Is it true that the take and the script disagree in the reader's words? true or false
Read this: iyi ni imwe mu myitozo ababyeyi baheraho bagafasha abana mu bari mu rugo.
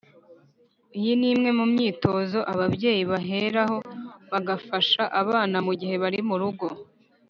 true